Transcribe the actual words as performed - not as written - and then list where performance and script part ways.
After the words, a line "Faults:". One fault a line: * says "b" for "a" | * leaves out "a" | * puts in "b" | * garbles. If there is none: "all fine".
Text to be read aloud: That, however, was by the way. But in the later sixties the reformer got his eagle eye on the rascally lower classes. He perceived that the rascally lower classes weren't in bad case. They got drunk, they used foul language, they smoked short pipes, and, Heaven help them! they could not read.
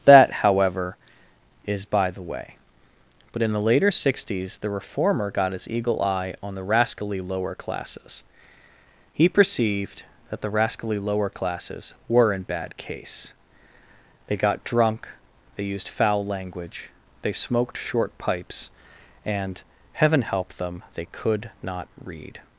That, however, is by the way. But in the later sixties the reformer got his eagle eye on the rascally lower classes. He perceived that the rascally lower classes were in bad case. They got drunk, they used foul language, they smoked short pipes, and, Heaven help them! they could not read.
Faults:
* says "is" for "was"
* says "were" for "weren't"